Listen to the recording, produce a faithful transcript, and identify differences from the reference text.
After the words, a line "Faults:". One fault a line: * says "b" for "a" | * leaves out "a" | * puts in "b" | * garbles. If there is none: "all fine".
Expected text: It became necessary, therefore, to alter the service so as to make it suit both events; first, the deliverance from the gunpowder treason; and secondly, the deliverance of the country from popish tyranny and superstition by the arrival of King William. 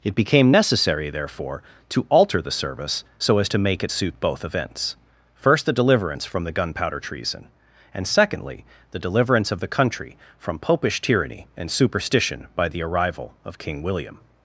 It became necessary, therefore, to alter the service so as to make it suit both events; first, the deliverance from the gunpowder treason; and secondly, the deliverance of the country from popish tyranny and superstition by the arrival of King William.
Faults:
all fine